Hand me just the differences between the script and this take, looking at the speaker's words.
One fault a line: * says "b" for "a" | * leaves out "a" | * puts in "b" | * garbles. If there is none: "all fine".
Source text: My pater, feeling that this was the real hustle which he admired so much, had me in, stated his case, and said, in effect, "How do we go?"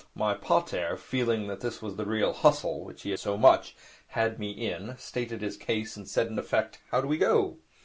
* leaves out "admired"